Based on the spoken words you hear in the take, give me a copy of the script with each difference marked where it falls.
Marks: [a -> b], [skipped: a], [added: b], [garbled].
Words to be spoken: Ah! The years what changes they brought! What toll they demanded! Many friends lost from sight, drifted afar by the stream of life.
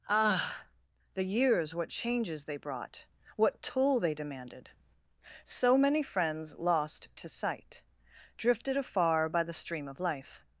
Ah! The years what changes they brought! What toll they demanded! [added: So] Many friends lost [from -> to] sight, drifted afar by the stream of life.